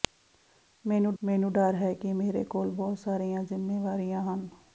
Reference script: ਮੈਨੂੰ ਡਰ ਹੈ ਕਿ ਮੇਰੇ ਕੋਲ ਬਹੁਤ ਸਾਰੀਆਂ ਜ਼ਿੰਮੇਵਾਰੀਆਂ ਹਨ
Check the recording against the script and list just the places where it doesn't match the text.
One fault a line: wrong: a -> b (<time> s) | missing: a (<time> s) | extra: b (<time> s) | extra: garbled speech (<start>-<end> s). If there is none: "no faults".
extra: ਮੈਨੂੰ (1.2 s)